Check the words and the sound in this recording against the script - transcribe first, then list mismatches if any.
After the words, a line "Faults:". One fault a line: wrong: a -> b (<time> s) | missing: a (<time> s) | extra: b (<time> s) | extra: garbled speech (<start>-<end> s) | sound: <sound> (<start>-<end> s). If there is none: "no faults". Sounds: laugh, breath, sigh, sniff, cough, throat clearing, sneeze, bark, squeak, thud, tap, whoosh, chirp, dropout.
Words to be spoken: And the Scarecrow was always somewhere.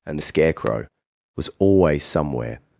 And the Scarecrow was always somewhere.
Faults:
no faults